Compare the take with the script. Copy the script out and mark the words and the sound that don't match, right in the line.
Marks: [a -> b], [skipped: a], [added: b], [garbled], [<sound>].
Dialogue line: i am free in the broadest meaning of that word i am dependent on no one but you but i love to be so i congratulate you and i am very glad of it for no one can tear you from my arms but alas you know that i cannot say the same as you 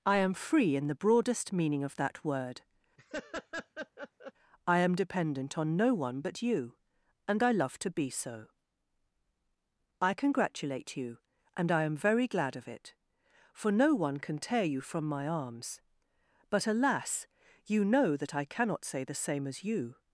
i am free in the broadest meaning of that word [laugh] i am dependent on no one but you [but -> and] i love to be so i congratulate you and i am very glad of it for no one can tear you from my arms but alas you know that i cannot say the same as you